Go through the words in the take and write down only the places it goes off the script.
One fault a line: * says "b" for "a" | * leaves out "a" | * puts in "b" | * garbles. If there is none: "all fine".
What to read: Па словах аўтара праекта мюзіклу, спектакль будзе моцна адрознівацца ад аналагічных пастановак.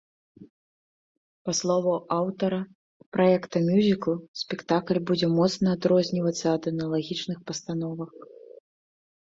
all fine